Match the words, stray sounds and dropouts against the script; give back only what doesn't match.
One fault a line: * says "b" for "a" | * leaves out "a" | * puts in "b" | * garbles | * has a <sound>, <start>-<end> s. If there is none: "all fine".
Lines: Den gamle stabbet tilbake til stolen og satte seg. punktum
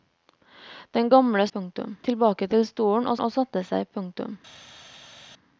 * says "punktum" for "stabbet"
* puts in "og"